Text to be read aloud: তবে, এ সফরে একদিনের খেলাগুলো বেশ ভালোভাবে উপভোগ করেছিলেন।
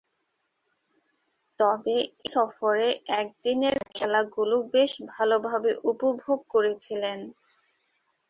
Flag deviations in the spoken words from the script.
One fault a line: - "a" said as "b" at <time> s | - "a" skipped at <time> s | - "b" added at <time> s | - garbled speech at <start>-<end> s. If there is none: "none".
- "এ" skipped at 1.9 s